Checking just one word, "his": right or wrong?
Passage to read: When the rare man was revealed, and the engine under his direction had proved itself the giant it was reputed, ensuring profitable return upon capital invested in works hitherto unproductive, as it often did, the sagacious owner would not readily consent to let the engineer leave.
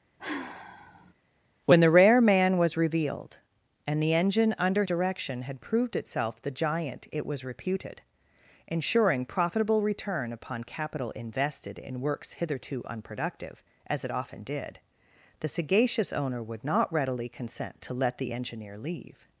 wrong